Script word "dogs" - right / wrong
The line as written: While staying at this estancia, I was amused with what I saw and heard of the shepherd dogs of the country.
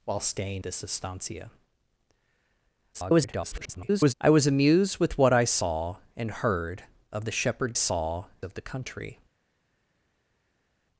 wrong